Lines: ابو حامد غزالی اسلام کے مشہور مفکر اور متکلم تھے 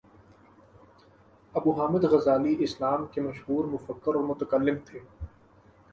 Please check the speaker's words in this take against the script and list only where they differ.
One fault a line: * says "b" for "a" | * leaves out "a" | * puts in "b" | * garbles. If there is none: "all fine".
all fine